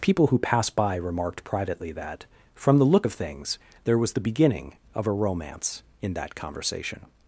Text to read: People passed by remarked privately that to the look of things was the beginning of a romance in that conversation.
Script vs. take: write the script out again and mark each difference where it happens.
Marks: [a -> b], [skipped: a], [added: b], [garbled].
People [added: who] passed by remarked privately that [to -> from] the look of things [added: there] was the beginning of a romance in that conversation.